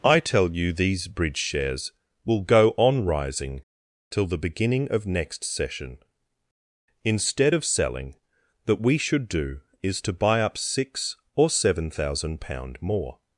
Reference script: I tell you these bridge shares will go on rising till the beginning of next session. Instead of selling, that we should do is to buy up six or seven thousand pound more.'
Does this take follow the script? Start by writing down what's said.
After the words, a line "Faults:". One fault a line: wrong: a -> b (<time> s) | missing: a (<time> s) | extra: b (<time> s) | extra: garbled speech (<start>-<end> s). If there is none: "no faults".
I tell you these bridge shares will go on rising till the beginning of next session. Instead of selling, that we should do is to buy up six or seven thousand pound more.'
Faults:
no faults